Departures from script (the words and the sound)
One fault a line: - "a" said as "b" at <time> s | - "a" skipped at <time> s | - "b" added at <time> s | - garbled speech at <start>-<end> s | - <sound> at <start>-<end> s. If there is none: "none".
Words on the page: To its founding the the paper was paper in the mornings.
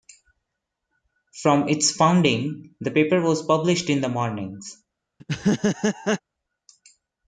- "To" said as "From" at 1.4 s
- "the" skipped at 2.9 s
- "paper" said as "published" at 3.5 s
- laugh at 5.2-6.2 s